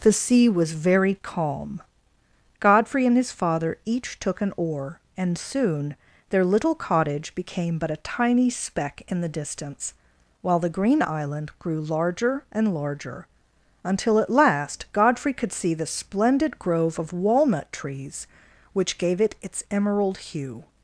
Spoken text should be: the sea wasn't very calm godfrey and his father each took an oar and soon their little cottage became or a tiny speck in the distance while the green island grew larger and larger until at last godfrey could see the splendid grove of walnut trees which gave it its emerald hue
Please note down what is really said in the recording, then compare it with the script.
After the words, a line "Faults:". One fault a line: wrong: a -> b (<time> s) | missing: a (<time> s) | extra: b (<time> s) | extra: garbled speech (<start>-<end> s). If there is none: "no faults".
the sea was very calm godfrey and his father each took an oar and soon their little cottage became but a tiny speck in the distance while the green island grew larger and larger until at last godfrey could see the splendid grove of walnut trees which gave it its emerald hue
Faults:
wrong: wasn't -> was (0.5 s)
wrong: or -> but (7.8 s)